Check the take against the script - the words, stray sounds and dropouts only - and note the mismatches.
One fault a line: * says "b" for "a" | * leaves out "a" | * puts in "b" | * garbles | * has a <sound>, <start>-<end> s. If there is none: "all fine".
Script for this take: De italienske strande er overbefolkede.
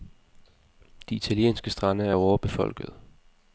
all fine